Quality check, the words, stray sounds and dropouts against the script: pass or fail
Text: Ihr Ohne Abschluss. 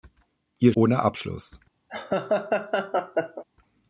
fail